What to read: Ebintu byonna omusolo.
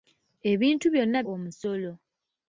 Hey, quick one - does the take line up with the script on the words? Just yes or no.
yes